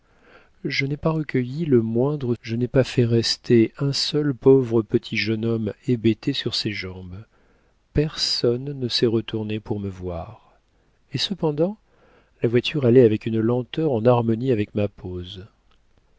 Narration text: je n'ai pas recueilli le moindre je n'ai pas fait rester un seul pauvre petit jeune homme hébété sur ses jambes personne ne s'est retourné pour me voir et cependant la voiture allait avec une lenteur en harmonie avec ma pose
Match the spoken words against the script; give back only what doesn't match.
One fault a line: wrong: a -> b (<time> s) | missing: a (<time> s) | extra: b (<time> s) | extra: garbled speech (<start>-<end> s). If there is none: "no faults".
no faults